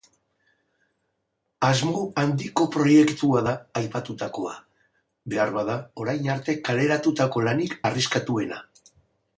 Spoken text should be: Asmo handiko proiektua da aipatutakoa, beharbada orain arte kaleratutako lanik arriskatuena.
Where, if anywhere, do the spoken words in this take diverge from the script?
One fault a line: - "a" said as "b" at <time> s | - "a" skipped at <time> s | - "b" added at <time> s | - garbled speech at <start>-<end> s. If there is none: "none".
none